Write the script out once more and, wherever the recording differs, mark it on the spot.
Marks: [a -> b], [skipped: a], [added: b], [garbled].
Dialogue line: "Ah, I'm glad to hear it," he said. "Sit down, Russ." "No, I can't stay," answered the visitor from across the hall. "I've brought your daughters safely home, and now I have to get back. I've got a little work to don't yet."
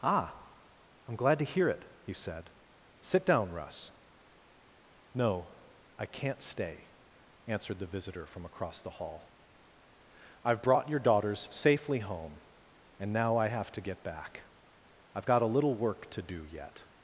"Ah, I'm glad to hear it," he said. "Sit down, Russ." "No, I can't stay," answered the visitor from across the hall. "I've brought your daughters safely home, and now I have to get back. I've got a little work to [don't -> do] yet."